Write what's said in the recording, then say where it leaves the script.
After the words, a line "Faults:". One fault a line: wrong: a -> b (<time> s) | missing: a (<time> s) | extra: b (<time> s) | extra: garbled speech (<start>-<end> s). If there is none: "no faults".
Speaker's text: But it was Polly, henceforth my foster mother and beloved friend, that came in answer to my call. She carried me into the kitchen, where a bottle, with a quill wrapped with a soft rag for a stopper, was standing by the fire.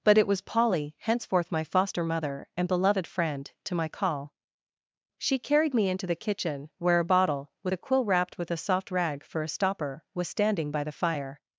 But it was Polly, henceforth my foster mother and beloved friend, to my call. She carried me into the kitchen, where a bottle, with a quill wrapped with a soft rag for a stopper, was standing by the fire.
Faults:
missing: that came in answer (3.5 s)